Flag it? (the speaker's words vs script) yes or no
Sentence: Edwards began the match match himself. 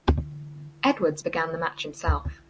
yes